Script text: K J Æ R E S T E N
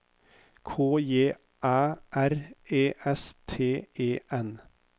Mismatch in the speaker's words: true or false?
false